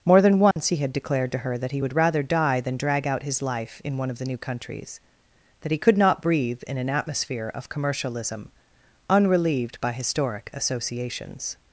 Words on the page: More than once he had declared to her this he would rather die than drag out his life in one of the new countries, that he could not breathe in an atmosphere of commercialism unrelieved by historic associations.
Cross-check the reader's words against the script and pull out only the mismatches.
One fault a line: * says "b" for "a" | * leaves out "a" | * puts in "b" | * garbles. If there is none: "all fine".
* says "that" for "this"